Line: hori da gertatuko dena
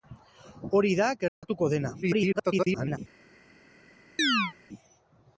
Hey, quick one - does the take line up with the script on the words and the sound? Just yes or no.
no